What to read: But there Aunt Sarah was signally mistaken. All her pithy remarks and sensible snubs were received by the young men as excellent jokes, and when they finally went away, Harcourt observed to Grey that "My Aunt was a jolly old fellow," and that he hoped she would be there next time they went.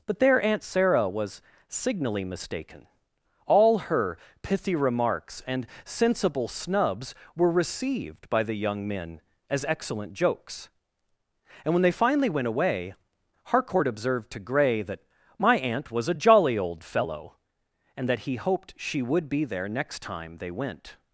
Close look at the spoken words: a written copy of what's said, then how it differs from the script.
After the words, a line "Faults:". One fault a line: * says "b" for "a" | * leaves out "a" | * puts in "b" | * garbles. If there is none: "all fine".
But there Aunt Sarah was signally mistaken. All her pithy remarks and sensible snubs were received by the young men as excellent jokes, and when they finally went away, Harcourt observed to Grey that "My Aunt was a jolly old fellow," and that he hoped she would be there next time they went.
Faults:
all fine